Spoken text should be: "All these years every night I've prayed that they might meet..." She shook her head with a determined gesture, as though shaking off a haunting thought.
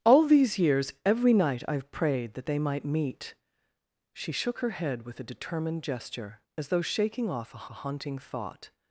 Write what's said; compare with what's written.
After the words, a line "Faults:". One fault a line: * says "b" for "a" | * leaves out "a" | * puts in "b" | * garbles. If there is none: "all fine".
"All these years every night I've prayed that they might meet..." She shook her head with a determined gesture, as though shaking off a a haunting thought.
Faults:
* puts in "a"